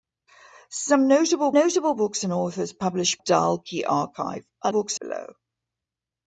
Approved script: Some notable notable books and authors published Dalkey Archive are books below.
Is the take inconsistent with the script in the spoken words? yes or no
no